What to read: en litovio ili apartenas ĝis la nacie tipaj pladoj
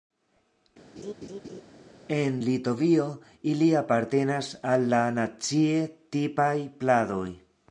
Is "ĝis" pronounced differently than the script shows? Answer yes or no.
yes